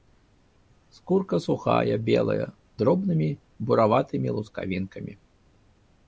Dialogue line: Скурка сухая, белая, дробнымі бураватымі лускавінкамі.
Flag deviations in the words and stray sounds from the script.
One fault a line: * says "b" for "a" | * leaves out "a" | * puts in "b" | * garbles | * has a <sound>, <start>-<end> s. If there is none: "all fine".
all fine